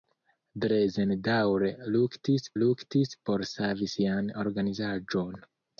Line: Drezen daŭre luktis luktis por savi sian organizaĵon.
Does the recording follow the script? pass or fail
pass